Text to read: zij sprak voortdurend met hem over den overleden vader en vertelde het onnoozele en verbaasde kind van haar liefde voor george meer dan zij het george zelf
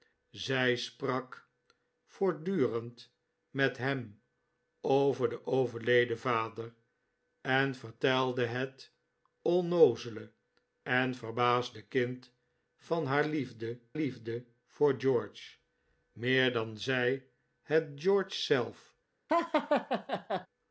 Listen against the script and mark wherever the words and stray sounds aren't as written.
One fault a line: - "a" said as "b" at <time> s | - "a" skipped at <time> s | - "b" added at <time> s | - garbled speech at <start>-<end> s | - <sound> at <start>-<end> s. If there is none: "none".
- "liefde" added at 13.9 s
- laugh at 19.3-20.5 s